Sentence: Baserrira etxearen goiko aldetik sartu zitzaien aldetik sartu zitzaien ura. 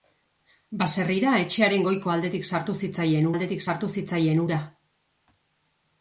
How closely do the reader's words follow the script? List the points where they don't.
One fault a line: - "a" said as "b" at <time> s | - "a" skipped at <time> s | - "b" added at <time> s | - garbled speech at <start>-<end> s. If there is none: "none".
none